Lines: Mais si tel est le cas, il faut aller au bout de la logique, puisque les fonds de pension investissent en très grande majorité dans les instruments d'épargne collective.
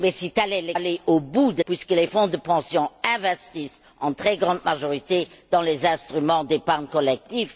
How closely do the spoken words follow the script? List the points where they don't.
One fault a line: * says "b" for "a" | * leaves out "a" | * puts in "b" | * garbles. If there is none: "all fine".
* leaves out "cas il faut"
* leaves out "la logique"